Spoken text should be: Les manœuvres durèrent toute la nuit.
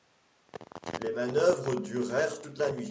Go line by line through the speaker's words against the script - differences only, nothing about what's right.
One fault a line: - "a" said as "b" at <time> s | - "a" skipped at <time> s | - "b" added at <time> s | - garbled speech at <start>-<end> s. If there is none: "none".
none